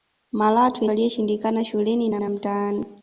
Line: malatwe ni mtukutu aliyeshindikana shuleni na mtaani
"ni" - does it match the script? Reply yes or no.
no